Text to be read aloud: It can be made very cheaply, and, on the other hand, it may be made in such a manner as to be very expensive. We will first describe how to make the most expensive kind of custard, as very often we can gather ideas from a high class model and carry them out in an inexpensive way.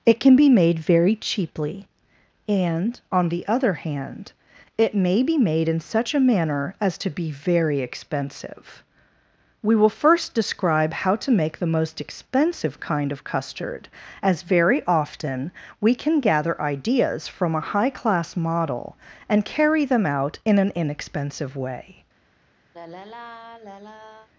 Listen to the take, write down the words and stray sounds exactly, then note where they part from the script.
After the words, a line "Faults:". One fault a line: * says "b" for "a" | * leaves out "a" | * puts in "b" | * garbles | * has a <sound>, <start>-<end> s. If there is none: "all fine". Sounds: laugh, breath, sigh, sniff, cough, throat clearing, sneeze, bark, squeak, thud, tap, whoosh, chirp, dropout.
It can be made very cheaply, and, on the other hand, it may be made in such a manner as to be very expensive. We will first describe how to make the most expensive kind of custard, as very often we can gather ideas from a high class model and carry them out in an inexpensive way.
Faults:
* has a sigh, 22.7-24.3 s